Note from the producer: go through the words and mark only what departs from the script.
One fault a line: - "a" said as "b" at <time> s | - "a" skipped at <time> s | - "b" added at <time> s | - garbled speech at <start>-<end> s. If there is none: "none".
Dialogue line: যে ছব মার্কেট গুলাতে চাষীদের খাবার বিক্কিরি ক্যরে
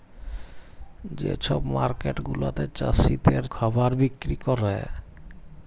none